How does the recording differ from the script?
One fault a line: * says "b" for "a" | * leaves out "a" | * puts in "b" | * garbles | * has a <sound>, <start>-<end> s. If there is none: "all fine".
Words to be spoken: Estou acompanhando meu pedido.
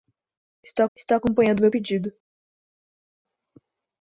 * puts in "estou"